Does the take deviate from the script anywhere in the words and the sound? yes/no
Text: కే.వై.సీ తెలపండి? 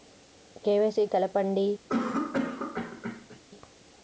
yes